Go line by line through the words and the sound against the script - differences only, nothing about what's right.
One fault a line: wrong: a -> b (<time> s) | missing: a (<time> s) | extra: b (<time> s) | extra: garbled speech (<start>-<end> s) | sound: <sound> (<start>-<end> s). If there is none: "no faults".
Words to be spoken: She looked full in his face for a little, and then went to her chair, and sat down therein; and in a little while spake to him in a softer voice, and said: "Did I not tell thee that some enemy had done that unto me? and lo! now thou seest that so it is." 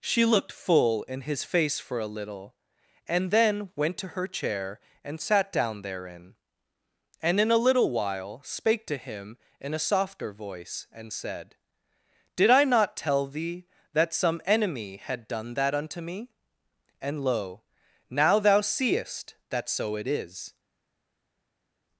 no faults